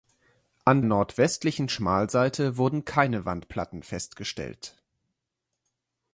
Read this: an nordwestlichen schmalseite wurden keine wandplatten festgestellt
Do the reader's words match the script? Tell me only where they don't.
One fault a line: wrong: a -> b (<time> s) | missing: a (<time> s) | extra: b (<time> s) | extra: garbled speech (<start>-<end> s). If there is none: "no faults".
no faults